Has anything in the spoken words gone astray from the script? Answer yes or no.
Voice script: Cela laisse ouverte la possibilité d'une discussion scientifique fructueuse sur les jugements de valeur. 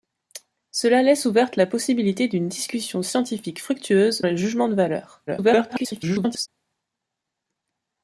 yes